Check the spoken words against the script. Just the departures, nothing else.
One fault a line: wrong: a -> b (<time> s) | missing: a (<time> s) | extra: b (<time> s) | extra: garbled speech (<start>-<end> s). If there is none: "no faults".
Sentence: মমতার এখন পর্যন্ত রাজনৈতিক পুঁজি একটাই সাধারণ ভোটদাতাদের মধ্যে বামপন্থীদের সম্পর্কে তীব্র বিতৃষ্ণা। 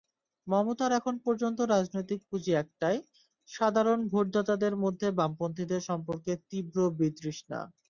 no faults